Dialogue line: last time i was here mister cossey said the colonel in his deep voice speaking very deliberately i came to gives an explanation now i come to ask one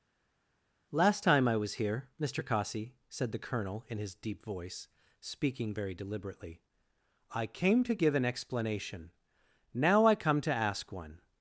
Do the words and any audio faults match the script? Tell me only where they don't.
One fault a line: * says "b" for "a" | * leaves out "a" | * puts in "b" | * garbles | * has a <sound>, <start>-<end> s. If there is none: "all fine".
* says "give" for "gives"